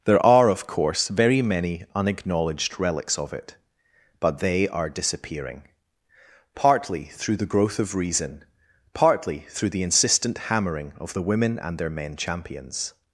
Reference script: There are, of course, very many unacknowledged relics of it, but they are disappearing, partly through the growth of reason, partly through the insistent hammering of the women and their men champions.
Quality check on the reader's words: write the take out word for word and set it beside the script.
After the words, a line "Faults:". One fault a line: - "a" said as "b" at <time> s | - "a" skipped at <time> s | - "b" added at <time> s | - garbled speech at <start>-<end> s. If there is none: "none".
There are, of course, very many unacknowledged relics of it, but they are disappearing, partly through the growth of reason, partly through the insistent hammering of the women and their men champions.
Faults:
none